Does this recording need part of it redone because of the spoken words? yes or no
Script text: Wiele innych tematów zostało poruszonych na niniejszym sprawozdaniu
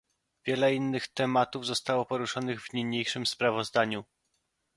yes